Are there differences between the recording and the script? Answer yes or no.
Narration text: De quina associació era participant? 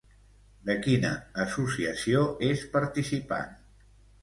yes